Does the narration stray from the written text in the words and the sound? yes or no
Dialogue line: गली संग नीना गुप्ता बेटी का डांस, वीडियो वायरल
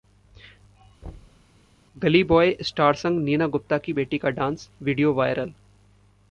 yes